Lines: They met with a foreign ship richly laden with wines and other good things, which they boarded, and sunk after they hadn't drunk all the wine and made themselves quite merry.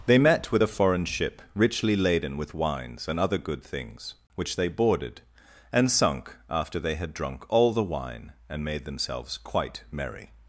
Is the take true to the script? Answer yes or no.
no